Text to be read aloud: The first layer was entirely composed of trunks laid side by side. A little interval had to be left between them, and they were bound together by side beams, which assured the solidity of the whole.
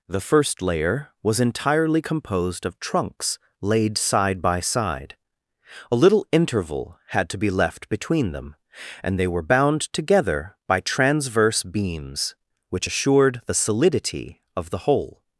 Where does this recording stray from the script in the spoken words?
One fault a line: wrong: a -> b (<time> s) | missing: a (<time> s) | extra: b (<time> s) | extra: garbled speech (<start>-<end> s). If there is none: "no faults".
wrong: side -> transverse (10.8 s)